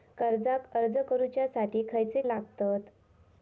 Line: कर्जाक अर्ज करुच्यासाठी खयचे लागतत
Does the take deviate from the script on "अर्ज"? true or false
false